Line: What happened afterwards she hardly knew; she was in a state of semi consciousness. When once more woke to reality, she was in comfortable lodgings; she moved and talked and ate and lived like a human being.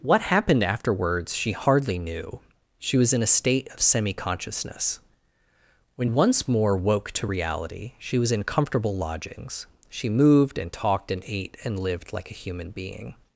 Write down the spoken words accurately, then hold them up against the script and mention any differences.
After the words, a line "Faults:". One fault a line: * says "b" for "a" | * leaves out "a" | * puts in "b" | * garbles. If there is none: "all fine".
What happened afterwards she hardly knew; she was in a state of semi consciousness. When once more woke to reality, she was in comfortable lodgings; she moved and talked and ate and lived like a human being.
Faults:
all fine